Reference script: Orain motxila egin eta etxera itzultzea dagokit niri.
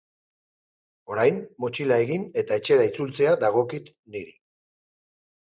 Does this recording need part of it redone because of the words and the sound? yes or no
no